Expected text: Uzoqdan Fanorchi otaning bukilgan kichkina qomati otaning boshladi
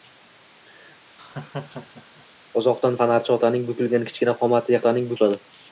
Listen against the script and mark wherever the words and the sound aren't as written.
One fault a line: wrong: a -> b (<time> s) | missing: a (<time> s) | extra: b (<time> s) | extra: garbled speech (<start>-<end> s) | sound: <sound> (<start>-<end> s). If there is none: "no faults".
sound: laugh (1.2-2.3 s)